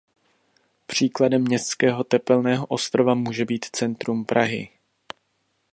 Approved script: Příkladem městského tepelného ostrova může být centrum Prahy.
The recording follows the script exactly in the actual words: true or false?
true